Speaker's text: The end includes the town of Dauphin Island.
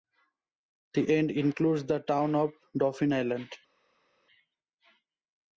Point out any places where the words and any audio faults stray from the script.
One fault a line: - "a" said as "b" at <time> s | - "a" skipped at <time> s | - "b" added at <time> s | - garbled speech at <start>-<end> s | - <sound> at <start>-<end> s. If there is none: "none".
none